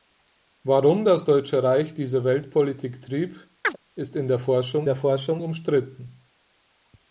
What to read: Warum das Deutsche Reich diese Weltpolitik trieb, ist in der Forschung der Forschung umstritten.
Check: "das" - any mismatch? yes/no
no